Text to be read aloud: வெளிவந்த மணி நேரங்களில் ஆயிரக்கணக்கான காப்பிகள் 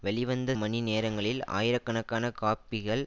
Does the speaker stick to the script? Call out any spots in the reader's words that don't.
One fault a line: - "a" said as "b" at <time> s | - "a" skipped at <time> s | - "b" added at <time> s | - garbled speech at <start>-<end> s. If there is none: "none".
none